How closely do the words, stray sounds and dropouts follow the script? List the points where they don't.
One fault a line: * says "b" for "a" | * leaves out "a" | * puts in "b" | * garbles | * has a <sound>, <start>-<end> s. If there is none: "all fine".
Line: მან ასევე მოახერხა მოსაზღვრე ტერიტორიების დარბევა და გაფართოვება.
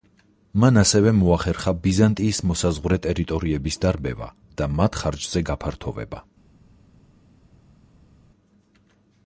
* puts in "ბიზანტიის"
* puts in "მათ ხარჯზე"